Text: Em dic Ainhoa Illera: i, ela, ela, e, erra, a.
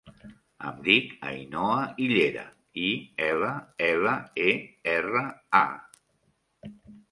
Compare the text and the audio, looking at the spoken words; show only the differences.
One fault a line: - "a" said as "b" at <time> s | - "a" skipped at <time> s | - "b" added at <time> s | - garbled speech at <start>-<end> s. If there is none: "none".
none